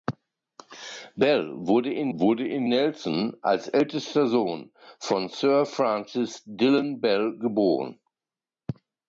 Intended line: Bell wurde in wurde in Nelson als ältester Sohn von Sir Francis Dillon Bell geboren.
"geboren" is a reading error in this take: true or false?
false